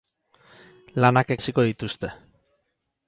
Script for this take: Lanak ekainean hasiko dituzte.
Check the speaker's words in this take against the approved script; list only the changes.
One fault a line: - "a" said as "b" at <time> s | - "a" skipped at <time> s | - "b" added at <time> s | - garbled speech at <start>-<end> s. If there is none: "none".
- "ekainean" skipped at 1.4 s